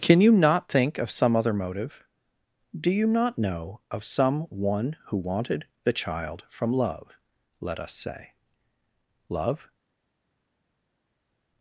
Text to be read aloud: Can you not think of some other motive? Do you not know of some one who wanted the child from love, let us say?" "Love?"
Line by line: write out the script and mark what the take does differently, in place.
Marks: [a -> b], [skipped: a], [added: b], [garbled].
Can you not think of some other motive? Do you not know of some one who wanted the child from love, let us say?" "Love?"